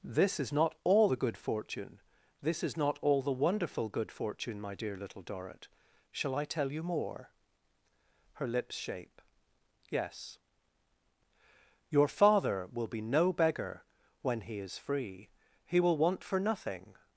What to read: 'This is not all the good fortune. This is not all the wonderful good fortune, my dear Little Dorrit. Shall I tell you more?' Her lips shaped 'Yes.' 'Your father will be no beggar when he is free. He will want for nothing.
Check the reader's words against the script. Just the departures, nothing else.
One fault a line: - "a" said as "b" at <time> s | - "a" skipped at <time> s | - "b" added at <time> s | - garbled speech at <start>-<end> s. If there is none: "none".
- "shaped" said as "shape" at 8.7 s